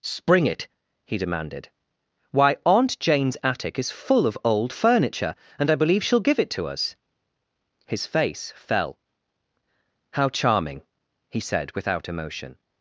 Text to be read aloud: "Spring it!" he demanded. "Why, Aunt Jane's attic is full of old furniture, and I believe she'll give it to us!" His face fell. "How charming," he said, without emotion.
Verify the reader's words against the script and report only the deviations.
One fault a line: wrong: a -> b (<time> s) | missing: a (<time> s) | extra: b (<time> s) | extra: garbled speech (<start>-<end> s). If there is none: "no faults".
no faults